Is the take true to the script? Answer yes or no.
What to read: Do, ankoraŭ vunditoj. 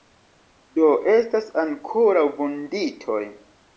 no